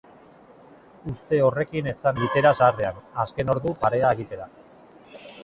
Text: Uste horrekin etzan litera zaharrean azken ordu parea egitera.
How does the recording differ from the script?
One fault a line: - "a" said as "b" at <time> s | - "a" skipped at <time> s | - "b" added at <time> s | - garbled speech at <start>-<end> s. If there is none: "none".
none